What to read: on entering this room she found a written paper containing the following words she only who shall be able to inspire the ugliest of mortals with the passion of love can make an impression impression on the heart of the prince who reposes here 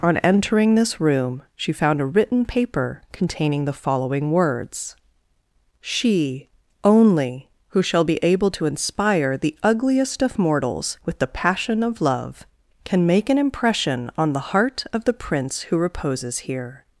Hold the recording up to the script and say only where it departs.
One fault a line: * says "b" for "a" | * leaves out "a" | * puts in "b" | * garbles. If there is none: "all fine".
* leaves out "impression"